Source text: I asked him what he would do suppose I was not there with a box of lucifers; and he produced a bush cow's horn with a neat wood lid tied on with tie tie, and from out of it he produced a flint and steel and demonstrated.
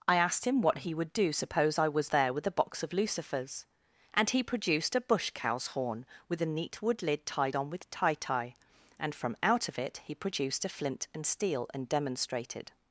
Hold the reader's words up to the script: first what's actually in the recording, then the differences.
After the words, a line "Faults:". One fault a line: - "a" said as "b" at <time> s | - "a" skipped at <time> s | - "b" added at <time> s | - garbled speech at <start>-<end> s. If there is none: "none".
I asked him what he would do suppose I was there with a box of lucifers; and he produced a bush cow's horn with a neat wood lid tied on with tie tie, and from out of it he produced a flint and steel and demonstrated.
Faults:
- "not" skipped at 2.1 s